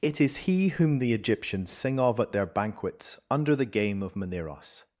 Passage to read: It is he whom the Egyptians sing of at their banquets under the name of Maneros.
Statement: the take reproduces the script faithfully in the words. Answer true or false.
false